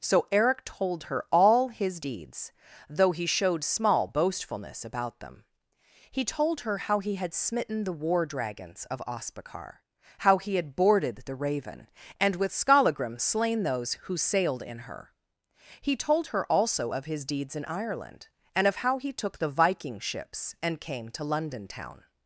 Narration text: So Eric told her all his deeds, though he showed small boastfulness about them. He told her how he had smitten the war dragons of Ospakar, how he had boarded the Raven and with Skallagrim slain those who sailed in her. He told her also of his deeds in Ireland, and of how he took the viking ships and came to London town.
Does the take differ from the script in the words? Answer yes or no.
no